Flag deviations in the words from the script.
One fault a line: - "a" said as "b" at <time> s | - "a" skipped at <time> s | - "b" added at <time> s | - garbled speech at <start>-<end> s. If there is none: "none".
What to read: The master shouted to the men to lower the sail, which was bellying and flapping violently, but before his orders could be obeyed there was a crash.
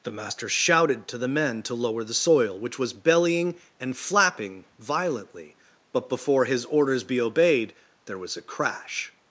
- "sail" said as "soil" at 2.1 s
- "could" skipped at 7.0 s